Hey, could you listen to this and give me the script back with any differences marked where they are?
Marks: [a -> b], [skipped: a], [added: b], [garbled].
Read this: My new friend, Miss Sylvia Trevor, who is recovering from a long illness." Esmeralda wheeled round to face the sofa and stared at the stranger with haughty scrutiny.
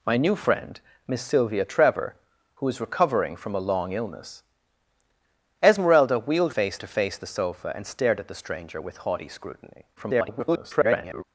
My new friend, Miss Sylvia Trevor, who is recovering from a long illness." Esmeralda wheeled [round -> face] to face the sofa and stared at the stranger with haughty scrutiny. [garbled]